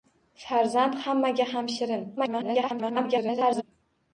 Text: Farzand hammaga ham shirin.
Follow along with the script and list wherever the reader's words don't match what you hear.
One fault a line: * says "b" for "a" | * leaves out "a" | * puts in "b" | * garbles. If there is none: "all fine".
* garbles